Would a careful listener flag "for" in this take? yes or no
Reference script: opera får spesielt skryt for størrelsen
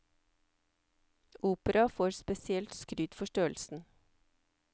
no